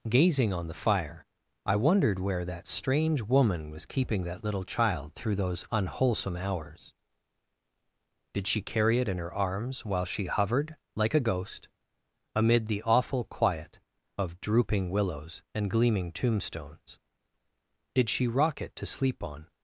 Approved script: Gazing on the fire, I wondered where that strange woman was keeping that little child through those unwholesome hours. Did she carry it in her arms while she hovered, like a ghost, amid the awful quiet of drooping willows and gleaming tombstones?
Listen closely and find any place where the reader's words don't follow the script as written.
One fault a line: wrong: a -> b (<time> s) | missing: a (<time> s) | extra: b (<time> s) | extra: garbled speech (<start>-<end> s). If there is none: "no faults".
extra: Did she rock it to sleep on (17.9 s)